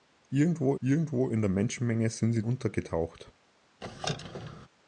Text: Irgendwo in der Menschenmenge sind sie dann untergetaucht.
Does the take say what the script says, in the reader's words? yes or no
no